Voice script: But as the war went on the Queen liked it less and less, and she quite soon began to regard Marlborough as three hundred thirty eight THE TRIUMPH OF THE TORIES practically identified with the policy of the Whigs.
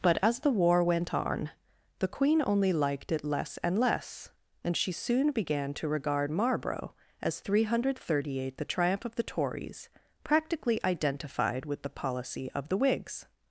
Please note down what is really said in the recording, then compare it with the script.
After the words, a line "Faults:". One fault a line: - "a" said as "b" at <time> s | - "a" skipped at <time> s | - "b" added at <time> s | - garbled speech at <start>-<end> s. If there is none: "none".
But as the war went on the Queen only liked it less and less, and she soon began to regard Marlborough as three hundred thirty eight THE TRIUMPH OF THE TORIES practically identified with the policy of the Whigs.
Faults:
- "only" added at 2.5 s
- "quite" skipped at 4.9 s